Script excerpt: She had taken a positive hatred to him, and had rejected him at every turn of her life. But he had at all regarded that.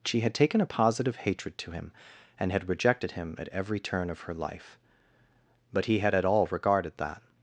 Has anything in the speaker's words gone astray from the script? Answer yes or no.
no